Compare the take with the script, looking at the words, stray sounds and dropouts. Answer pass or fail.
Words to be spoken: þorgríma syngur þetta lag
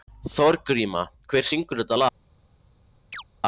fail